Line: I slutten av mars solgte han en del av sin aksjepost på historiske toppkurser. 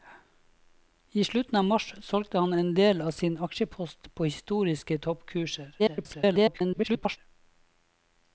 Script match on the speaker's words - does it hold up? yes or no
no